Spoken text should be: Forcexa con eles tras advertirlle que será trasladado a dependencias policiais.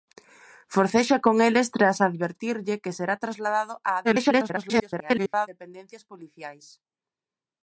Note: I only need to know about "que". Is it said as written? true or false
true